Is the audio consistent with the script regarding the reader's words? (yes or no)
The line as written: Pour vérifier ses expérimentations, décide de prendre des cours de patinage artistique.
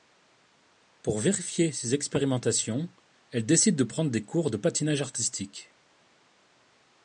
no